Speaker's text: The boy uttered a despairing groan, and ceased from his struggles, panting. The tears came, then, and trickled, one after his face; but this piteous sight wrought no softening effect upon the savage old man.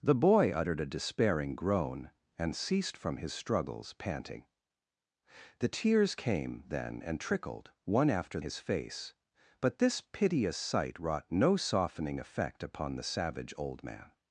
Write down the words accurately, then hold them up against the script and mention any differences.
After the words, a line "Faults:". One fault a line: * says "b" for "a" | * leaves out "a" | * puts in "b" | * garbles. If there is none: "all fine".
The boy uttered a despairing groan, and ceased from his struggles, panting. The tears came, then, and trickled, one after his face; but this piteous sight wrought no softening effect upon the savage old man.
Faults:
all fine